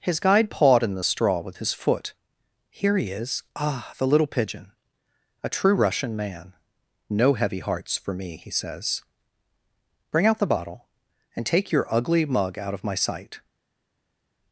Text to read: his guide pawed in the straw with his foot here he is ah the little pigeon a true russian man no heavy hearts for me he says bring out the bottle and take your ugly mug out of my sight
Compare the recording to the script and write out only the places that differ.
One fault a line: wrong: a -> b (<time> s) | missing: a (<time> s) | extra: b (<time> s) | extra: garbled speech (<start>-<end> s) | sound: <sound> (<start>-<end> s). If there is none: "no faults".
no faults